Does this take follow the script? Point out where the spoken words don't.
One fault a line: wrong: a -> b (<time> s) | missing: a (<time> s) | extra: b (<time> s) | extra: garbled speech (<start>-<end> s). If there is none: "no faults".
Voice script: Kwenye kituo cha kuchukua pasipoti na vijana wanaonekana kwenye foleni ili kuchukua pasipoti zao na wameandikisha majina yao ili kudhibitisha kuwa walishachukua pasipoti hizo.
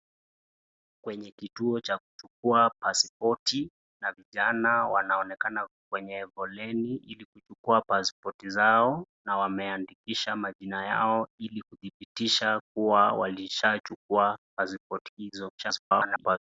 extra: garbled speech (15.6-16.4 s)